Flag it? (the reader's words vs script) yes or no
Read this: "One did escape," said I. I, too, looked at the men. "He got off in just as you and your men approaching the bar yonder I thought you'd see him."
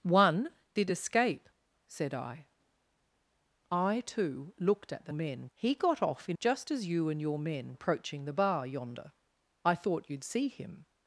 no